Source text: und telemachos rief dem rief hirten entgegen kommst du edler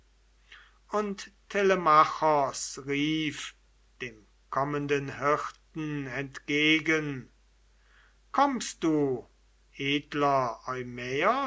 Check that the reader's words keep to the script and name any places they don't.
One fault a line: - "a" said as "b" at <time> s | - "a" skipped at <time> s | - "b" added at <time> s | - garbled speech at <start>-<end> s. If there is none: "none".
- "rief" said as "kommenden" at 4.5 s